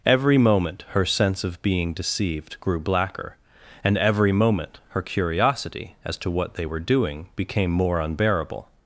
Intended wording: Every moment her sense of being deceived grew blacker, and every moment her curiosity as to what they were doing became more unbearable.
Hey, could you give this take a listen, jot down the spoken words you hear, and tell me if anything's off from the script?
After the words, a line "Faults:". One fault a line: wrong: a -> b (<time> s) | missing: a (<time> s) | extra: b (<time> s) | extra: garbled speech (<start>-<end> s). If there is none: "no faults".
Every moment her sense of being deceived grew blacker, and every moment her curiosity as to what they were doing became more unbearable.
Faults:
no faults